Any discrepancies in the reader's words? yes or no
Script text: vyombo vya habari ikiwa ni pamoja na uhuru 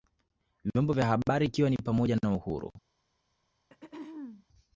no